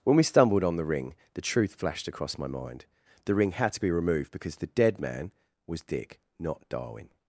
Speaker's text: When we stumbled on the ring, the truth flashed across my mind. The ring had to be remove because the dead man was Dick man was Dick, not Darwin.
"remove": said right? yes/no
no